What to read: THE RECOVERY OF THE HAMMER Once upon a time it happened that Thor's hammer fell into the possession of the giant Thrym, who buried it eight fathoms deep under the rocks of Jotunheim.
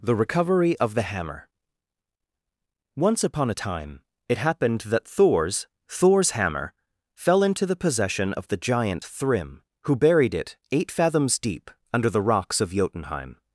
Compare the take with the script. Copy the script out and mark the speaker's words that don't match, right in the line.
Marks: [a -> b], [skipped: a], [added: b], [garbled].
THE RECOVERY OF THE HAMMER Once upon a time it happened that Thor's [added: Thor's] hammer fell into the possession of the giant Thrym, who buried it eight fathoms deep under the rocks of Jotunheim.